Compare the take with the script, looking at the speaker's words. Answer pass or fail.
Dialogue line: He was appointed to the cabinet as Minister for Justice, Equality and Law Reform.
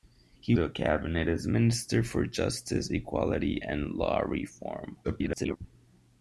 fail